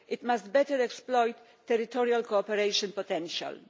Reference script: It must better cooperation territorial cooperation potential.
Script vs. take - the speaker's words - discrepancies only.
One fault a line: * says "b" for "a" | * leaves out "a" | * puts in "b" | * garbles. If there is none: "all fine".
* says "exploit" for "cooperation"